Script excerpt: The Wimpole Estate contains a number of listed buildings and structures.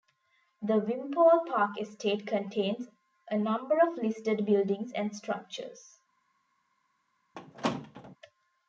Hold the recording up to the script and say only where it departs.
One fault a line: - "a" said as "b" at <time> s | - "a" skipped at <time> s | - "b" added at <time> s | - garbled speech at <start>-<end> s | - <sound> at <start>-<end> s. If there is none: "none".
- "Park" added at 1.4 s
- squeak at 7.3-8.2 s